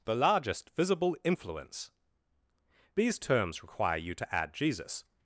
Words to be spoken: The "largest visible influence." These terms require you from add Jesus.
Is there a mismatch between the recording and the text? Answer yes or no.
yes